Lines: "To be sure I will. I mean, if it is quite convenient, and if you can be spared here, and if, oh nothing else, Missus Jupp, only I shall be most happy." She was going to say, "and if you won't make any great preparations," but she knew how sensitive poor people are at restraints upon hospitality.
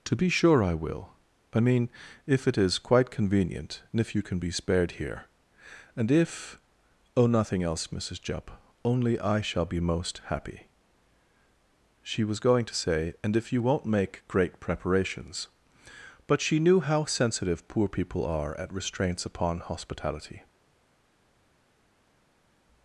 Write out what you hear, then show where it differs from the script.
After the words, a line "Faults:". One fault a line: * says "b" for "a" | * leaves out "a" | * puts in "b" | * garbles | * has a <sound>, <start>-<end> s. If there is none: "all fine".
"To be sure I will. I mean, if it is quite convenient, and if you can be spared here, and if, oh nothing else, Missus Jupp, only I shall be most happy." She was going to say, "and if you won't make great preparations," but she knew how sensitive poor people are at restraints upon hospitality.
Faults:
* leaves out "any"